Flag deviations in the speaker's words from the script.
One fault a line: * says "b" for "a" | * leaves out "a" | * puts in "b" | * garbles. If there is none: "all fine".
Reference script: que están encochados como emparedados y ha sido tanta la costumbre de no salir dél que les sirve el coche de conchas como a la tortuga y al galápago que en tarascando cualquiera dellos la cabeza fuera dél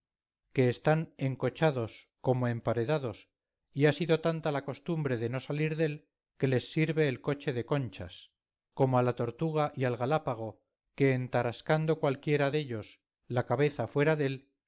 all fine